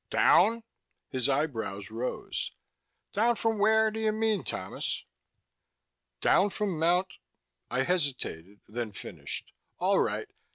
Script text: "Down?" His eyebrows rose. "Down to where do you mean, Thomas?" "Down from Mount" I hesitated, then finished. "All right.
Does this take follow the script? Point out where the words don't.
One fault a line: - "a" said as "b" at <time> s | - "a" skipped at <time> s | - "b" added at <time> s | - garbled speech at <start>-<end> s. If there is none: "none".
- "to" said as "from" at 3.3 s